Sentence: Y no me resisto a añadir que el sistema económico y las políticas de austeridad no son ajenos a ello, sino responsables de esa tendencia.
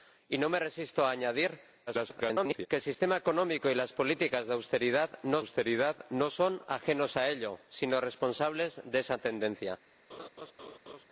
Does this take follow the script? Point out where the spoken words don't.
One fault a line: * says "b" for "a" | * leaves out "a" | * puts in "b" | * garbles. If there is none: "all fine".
* garbles
* puts in "austeridad no"